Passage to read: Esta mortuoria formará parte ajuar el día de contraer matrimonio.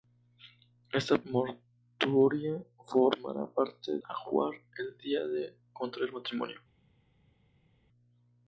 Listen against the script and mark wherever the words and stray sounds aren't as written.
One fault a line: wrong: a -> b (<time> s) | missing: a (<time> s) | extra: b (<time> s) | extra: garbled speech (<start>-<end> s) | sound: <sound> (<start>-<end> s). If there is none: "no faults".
no faults